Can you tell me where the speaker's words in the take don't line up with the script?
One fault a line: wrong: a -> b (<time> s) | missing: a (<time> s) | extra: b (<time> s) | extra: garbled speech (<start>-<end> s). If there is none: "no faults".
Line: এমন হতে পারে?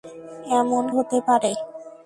no faults